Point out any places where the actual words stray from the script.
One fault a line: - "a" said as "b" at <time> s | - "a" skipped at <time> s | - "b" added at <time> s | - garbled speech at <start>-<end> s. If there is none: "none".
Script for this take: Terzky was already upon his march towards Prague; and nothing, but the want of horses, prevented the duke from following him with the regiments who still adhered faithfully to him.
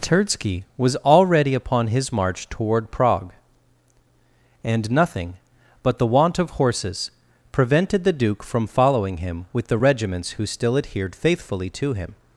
- "towards" said as "toward" at 2.5 s